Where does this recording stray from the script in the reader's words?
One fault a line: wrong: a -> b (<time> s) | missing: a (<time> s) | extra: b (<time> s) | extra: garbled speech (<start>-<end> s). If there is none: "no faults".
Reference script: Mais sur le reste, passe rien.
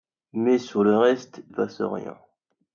no faults